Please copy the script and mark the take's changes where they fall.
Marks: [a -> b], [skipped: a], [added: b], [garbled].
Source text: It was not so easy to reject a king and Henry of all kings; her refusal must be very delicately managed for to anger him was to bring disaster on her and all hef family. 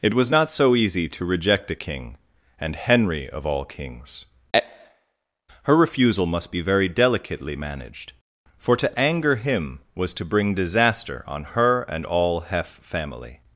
It was not so easy to reject a king and Henry of all kings; her refusal must be very delicately managed for to anger him was to bring disaster on her and all hef family.